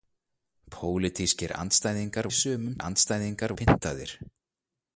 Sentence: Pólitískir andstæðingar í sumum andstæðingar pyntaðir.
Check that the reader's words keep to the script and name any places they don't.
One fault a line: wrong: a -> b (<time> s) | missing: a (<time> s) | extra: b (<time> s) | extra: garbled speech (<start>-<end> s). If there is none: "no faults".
no faults